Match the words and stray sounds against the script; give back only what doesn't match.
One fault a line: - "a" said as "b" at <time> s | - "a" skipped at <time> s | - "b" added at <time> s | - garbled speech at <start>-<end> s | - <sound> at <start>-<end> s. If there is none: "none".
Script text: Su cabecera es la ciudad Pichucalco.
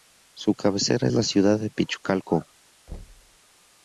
- "de" added at 1.6 s
- thud at 2.9-3.4 s